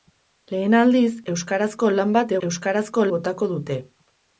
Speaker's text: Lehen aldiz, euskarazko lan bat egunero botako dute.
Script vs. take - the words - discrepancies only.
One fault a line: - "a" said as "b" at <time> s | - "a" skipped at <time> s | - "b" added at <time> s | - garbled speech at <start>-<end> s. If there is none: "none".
- "egunero" said as "euskarazko" at 2.5 s